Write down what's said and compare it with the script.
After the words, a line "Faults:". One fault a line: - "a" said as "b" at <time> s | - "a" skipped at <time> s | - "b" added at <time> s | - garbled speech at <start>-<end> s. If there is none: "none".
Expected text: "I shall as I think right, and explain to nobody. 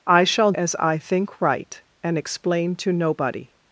"I shall as I think right, and explain to nobody.
Faults:
none